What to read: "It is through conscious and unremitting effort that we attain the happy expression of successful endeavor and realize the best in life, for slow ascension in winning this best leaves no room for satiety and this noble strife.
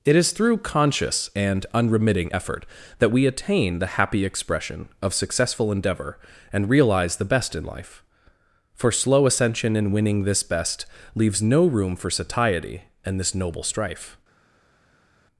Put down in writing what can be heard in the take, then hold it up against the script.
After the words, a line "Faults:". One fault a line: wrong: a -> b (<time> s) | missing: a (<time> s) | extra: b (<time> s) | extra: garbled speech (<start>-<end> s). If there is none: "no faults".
"It is through conscious and unremitting effort that we attain the happy expression of successful endeavor and realize the best in life, for slow ascension in winning this best leaves no room for satiety and this noble strife.
Faults:
no faults